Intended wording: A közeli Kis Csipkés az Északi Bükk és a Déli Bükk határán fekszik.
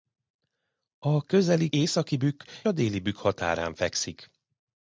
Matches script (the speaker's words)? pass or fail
fail